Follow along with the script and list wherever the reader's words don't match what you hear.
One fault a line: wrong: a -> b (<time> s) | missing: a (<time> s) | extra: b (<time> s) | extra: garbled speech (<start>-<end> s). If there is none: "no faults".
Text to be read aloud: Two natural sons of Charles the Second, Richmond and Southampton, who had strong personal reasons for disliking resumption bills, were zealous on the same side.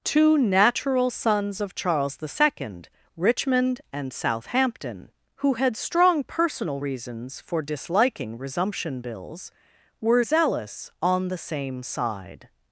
no faults